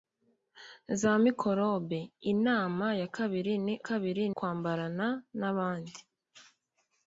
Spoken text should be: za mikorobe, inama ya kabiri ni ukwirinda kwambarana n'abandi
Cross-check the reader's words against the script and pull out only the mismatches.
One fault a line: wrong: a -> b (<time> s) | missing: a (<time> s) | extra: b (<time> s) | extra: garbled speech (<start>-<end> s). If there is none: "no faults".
wrong: ukwirinda -> kabiri (3.9 s)